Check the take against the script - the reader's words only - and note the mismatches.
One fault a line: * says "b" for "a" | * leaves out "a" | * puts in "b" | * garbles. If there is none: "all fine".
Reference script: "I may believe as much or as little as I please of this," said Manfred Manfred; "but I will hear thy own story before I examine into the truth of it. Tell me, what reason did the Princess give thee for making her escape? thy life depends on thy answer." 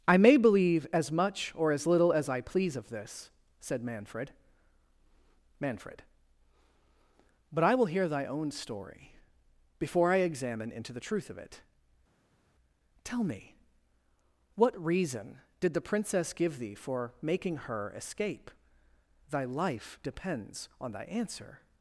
all fine